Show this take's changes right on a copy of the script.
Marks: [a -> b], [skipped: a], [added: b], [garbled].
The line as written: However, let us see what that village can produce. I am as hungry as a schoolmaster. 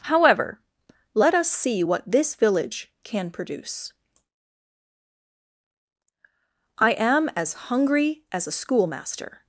However, let us see what [that -> this] village can produce. I am as hungry as a schoolmaster.